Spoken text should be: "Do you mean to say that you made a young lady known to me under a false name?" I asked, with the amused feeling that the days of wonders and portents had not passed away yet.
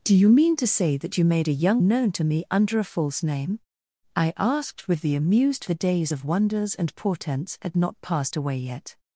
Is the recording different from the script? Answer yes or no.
yes